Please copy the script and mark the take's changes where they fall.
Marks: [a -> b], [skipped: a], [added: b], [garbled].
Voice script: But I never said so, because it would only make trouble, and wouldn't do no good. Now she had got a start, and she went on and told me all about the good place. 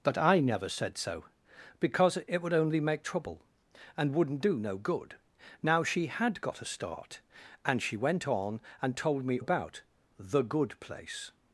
But I never said so, because it would only make trouble, and wouldn't do no good. Now she had got a start, and she went on and told me [skipped: all] about the good place.